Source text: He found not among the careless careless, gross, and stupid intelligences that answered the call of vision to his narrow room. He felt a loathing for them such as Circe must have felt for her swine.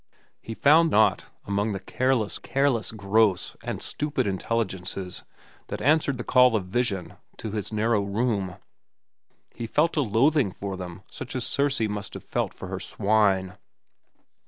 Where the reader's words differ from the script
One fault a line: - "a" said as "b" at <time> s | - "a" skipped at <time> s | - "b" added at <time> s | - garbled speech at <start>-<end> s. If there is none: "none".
none